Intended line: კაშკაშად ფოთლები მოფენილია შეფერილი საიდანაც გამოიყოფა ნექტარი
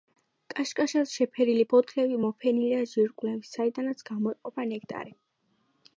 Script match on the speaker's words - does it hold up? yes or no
no